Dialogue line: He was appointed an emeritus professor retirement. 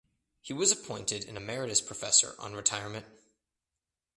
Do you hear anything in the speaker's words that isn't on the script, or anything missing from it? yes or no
yes